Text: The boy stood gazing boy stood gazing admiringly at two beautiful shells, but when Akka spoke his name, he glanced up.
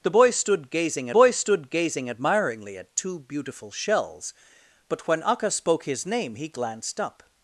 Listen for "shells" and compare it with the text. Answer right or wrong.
right